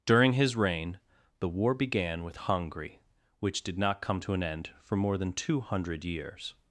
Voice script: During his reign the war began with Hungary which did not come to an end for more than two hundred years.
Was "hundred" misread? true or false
false